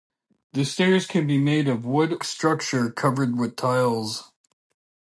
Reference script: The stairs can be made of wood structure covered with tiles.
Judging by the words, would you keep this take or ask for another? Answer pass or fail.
pass